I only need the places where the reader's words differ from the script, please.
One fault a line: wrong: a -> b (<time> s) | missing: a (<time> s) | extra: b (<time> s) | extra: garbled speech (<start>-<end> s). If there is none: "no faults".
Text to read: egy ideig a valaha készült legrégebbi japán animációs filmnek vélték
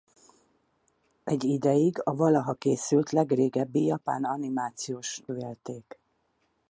missing: filmnek (5.2 s)